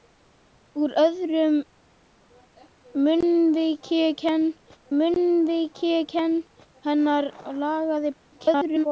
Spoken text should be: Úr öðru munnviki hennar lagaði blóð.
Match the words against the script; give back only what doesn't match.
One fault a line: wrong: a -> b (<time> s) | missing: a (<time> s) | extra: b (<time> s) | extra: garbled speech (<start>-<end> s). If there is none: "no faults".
extra: munnviki (5.0 s)
extra: garbled speech (8.3-8.9 s)